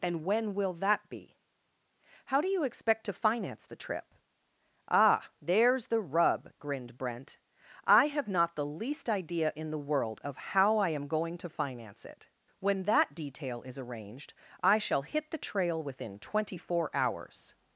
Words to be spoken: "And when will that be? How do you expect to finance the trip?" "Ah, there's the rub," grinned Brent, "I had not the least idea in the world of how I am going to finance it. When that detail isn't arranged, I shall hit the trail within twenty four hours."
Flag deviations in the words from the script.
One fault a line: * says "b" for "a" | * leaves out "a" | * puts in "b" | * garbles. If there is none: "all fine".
* says "have" for "had"
* says "is" for "isn't"